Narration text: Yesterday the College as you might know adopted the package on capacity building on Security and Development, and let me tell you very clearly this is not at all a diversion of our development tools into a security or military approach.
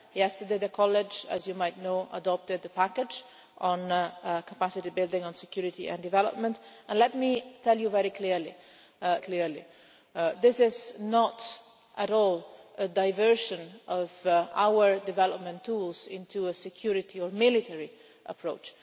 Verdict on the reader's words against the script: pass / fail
fail